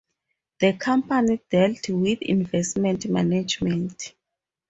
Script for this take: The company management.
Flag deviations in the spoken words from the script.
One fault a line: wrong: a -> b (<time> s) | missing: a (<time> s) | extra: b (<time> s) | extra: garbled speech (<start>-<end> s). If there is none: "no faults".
extra: dealt with investment (1.5 s)